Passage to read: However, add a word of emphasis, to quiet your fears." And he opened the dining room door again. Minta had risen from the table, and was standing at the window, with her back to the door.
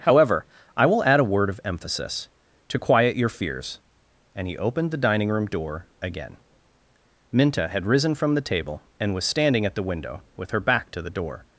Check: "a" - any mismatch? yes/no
no